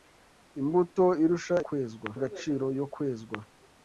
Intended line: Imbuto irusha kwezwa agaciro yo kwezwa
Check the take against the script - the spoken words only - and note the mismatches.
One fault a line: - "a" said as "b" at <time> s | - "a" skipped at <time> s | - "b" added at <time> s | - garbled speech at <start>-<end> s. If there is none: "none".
none